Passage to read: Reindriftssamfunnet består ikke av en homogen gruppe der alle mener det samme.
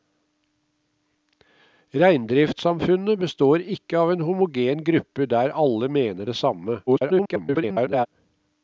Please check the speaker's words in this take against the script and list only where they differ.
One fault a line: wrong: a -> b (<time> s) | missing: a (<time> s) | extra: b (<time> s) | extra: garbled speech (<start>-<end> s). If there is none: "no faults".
extra: garbled speech (6.9-8.1 s)